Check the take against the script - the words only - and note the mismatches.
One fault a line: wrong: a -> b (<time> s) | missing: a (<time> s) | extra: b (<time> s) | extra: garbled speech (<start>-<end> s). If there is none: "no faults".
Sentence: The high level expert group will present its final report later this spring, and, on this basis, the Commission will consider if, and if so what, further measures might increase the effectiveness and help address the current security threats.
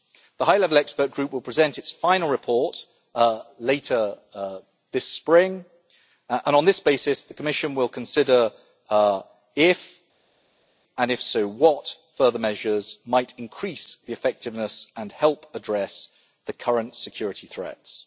no faults